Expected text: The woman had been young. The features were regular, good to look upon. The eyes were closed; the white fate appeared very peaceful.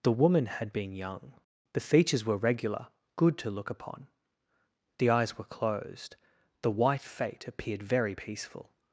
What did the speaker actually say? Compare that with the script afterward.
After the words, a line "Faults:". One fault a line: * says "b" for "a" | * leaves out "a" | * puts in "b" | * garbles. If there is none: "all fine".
The woman had been young. The features were regular, good to look upon. The eyes were closed; the white fate appeared very peaceful.
Faults:
all fine